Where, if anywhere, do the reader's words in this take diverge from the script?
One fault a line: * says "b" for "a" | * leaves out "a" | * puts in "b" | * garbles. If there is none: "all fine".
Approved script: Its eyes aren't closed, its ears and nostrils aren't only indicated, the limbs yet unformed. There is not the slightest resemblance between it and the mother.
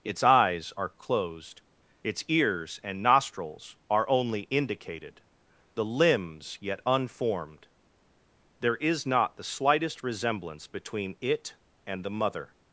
* says "are" for "aren't"
* says "are" for "aren't"